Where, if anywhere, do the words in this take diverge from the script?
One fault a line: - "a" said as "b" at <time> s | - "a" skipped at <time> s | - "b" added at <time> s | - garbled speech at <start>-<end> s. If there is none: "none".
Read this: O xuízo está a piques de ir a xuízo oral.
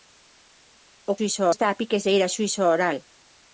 none